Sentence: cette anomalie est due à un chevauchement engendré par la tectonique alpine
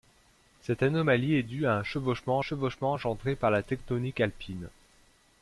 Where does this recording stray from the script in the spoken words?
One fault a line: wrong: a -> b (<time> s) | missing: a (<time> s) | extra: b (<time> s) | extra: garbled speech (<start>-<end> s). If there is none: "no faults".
extra: chevauchement (2.4 s)